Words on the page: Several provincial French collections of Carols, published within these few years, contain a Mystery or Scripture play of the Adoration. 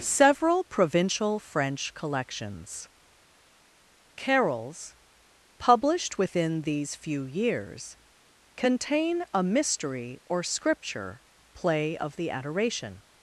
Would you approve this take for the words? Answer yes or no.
no